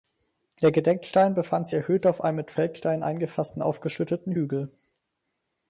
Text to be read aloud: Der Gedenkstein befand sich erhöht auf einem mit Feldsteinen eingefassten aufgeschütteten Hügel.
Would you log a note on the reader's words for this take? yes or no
no